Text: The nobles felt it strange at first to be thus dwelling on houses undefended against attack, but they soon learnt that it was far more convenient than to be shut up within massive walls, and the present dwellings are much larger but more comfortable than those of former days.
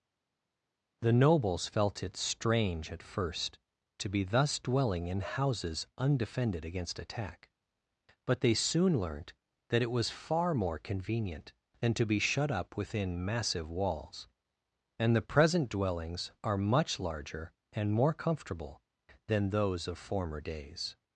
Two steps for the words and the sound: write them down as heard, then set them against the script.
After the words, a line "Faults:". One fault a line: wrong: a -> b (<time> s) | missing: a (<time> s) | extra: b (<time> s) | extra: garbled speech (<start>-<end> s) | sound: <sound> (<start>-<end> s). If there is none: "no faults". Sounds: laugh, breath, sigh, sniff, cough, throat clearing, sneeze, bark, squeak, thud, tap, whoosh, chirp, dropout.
The nobles felt it strange at first to be thus dwelling in houses undefended against attack, but they soon learnt that it was far more convenient than to be shut up within massive walls, and the present dwellings are much larger and more comfortable than those of former days.
Faults:
wrong: on -> in (5.1 s)
wrong: but -> and (17.7 s)